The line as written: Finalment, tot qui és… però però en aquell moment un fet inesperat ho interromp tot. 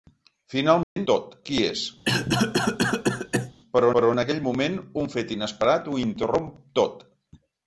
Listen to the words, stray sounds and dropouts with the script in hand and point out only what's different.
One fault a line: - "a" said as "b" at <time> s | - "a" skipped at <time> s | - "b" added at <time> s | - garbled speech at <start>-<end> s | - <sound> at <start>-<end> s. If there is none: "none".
- dropout at 0.8-1.0 s
- cough at 2.1-3.5 s